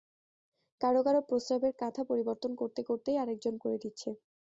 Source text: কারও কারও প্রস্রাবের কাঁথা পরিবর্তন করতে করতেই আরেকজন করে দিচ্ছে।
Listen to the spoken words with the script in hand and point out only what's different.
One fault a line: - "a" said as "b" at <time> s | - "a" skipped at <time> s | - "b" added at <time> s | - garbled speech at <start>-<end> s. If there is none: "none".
none